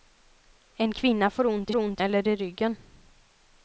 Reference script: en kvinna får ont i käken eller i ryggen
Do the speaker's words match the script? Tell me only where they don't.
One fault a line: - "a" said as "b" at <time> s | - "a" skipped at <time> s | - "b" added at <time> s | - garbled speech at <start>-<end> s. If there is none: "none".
- "käken" said as "ont" at 1.8 s